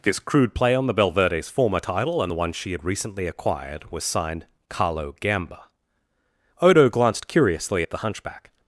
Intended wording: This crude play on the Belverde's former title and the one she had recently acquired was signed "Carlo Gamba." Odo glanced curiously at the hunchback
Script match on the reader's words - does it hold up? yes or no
yes